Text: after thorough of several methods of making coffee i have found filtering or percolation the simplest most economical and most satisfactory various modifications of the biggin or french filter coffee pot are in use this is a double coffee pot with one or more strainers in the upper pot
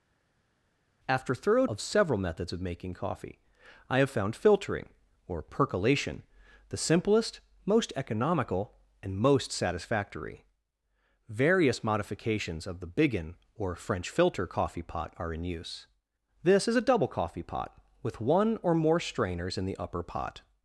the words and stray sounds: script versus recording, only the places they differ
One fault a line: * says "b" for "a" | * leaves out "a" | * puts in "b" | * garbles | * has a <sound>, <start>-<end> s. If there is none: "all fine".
all fine